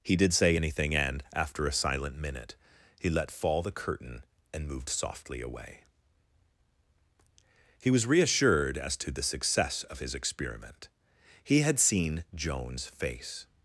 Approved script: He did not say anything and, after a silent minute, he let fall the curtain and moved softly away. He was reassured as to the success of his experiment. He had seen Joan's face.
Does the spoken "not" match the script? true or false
false